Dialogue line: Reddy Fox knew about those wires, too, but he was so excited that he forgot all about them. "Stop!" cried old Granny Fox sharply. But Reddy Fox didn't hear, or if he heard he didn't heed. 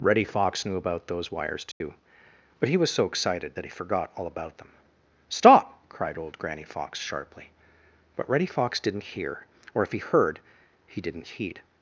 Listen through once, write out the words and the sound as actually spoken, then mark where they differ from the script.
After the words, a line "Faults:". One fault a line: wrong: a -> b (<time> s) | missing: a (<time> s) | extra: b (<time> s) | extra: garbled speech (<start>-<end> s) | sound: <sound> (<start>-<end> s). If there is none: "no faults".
Reddy Fox knew about those wires, too, but he was so excited that he forgot all about them. "Stop!" cried old Granny Fox sharply. But Reddy Fox didn't hear, or if he heard he didn't heed.
Faults:
sound: dropout (1.7-1.8 s)